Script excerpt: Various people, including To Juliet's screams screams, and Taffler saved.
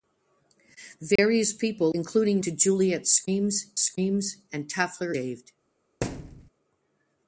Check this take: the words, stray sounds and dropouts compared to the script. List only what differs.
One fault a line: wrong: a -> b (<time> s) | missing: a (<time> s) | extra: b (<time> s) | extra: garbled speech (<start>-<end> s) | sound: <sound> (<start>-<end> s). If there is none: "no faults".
sound: dropout (1.2-1.2 s)
sound: thud (6.0-6.5 s)